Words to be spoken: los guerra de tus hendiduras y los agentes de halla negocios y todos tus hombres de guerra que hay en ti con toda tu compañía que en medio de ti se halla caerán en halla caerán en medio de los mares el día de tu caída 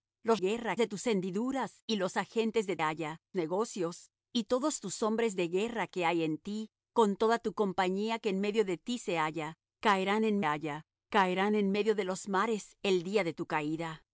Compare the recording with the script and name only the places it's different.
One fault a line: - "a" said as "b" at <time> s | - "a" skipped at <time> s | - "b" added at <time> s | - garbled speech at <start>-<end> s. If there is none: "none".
none